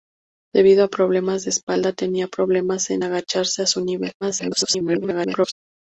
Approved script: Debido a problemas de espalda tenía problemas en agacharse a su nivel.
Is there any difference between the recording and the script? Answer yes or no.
yes